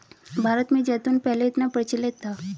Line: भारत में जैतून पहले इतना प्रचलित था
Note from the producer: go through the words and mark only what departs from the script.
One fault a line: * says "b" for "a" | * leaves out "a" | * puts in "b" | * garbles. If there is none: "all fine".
all fine